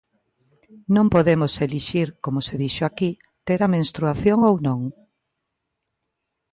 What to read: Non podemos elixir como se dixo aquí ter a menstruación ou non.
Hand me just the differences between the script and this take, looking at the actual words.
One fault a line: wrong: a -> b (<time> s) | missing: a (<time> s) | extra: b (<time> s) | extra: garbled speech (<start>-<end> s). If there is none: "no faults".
no faults